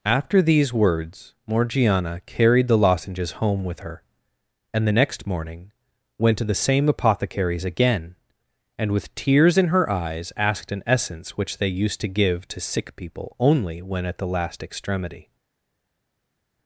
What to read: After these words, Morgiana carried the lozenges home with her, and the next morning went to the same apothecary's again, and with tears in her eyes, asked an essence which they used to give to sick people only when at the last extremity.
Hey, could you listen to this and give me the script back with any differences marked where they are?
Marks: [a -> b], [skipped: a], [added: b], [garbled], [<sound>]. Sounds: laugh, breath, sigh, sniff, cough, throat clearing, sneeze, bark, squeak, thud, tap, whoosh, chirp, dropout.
After these words, Morgiana carried the lozenges home with her, and the next morning went to the same apothecary's again, and with tears in her eyes, asked an essence which they used to give to sick people only when at the last extremity.